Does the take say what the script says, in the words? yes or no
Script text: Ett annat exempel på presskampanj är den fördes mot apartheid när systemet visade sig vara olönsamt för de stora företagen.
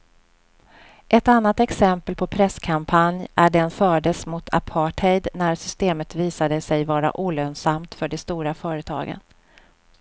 yes